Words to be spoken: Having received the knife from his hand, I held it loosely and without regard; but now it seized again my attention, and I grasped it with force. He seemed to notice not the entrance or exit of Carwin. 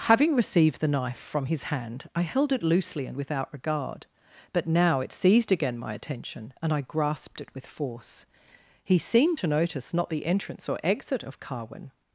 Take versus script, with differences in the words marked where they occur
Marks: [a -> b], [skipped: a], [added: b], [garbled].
Having received the knife from his hand, I held it loosely and without regard; but now it seized again my attention, and I grasped it with force. He seemed to notice not the entrance or exit of Carwin.